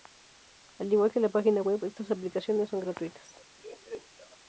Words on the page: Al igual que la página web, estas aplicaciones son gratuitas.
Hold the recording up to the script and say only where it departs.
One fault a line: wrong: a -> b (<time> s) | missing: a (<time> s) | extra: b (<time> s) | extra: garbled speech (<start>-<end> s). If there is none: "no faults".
no faults